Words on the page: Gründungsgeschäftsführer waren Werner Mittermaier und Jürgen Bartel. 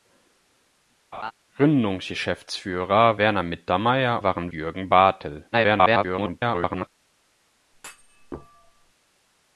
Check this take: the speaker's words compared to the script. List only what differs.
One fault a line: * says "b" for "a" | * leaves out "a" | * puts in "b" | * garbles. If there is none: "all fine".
* leaves out "waren"
* says "waren" for "und"
* garbles